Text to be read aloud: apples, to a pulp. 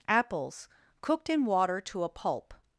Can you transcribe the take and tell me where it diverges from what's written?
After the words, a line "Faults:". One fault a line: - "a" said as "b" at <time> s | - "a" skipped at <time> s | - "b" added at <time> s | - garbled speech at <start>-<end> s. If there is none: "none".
apples, cooked in water to a pulp.
Faults:
- "cooked in water" added at 1.0 s